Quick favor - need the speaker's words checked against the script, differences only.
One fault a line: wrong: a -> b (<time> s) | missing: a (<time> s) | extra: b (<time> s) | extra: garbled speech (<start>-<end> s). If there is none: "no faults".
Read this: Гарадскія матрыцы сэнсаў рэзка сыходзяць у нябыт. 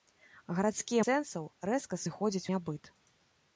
missing: матрыцы (1.0 s)
missing: у (2.5 s)